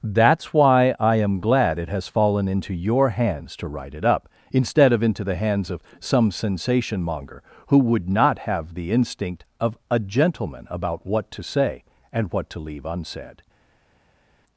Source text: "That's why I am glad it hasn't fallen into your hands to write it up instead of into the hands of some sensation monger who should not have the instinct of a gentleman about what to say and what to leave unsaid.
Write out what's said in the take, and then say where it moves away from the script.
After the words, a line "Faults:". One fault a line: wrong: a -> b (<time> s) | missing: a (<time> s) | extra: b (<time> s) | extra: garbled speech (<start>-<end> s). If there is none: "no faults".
"That's why I am glad it has fallen into your hands to write it up instead of into the hands of some sensation monger who would not have the instinct of a gentleman about what to say and what to leave unsaid.
Faults:
wrong: hasn't -> has (1.9 s)
wrong: should -> would (7.8 s)